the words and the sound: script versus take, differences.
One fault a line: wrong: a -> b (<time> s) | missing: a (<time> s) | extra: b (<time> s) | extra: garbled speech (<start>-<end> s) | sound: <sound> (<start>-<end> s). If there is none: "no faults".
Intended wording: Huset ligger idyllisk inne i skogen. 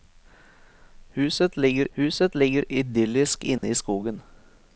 extra: huset ligger (2.0 s)
sound: dropout (3.6-3.6 s)